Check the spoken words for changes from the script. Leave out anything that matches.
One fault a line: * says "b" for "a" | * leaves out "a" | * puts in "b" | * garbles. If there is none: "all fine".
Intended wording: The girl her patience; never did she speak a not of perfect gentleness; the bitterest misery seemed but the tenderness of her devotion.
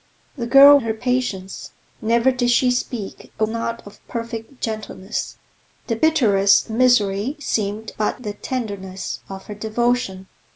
all fine